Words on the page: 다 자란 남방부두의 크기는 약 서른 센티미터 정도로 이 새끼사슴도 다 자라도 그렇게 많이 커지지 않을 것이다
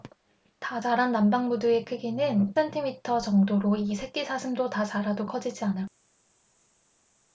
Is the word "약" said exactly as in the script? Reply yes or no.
no